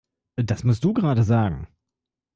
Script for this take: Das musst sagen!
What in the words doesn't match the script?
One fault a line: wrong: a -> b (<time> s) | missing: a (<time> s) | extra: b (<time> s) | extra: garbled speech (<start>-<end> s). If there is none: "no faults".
extra: du gerade (0.8 s)